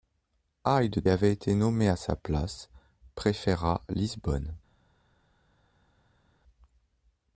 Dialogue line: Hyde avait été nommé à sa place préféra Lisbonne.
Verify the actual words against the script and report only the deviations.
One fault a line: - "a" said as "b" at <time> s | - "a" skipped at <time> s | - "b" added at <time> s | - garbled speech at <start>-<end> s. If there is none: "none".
none